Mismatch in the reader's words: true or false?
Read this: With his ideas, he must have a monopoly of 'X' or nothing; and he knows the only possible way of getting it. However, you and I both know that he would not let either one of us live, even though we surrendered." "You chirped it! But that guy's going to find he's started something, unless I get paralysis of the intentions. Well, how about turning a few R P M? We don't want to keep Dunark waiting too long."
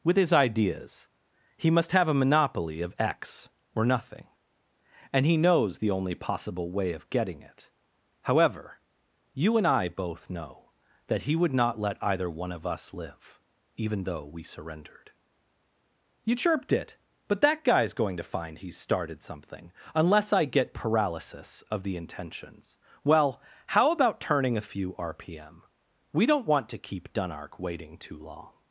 false